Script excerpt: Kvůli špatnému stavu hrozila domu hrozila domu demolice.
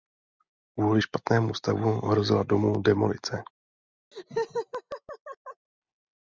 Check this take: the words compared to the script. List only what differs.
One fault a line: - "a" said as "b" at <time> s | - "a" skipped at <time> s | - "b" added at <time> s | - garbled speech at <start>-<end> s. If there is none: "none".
- "hrozila domu" skipped at 2.8 s